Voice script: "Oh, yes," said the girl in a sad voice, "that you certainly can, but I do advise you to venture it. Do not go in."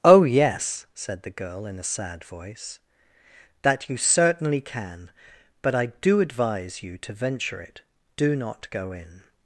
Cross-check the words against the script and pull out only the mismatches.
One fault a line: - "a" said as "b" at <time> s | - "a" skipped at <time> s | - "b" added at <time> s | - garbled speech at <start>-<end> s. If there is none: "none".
none